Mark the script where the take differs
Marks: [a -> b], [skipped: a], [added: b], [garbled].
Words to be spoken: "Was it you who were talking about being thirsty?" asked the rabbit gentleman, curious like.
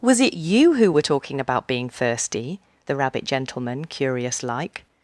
"Was it you who were talking about being thirsty?" [skipped: asked] the rabbit gentleman, curious like.